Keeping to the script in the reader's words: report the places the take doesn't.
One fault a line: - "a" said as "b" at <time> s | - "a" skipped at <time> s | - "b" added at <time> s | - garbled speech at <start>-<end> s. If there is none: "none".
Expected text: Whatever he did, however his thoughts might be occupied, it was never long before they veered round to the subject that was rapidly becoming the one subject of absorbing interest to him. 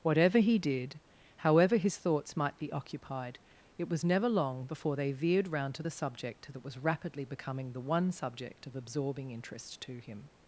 none